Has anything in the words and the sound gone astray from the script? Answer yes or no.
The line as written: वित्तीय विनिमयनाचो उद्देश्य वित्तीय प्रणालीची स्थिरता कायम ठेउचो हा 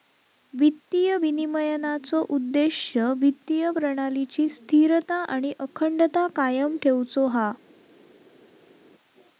yes